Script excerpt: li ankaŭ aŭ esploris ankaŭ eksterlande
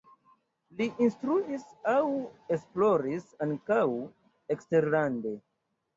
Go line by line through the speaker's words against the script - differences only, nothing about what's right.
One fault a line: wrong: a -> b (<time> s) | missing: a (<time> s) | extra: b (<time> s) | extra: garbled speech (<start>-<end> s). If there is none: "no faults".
wrong: ankaŭ -> instruis (1.1 s)